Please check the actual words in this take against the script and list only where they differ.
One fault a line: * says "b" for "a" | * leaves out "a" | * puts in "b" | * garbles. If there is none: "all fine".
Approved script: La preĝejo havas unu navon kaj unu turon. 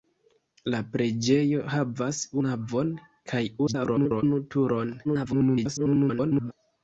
* leaves out "unu"
* garbles
* garbles